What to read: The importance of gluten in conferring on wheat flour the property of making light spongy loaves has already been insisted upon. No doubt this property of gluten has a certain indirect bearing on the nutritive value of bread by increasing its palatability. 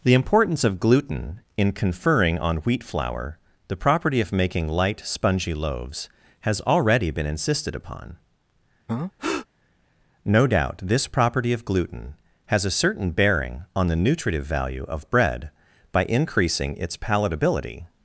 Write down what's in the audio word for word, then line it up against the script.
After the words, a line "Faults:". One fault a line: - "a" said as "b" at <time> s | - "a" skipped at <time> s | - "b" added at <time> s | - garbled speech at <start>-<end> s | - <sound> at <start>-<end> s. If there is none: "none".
The importance of gluten in conferring on wheat flour the property of making light spongy loaves has already been insisted upon. No doubt this property of gluten has a certain bearing on the nutritive value of bread by increasing its palatability.
Faults:
- breath at 8.9-9.5 s
- "indirect" skipped at 13.1 s